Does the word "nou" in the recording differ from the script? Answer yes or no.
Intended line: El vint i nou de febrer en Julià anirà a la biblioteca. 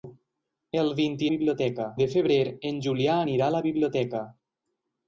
yes